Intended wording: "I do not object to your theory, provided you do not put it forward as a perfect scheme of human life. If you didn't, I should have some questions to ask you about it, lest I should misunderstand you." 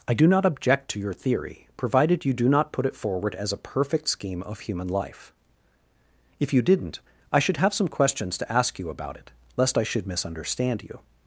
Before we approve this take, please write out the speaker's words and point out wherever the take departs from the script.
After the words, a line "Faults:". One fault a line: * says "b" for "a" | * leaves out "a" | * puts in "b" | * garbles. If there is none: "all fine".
"I do not object to your theory, provided you do not put it forward as a perfect scheme of human life. If you didn't, I should have some questions to ask you about it, lest I should misunderstand you."
Faults:
all fine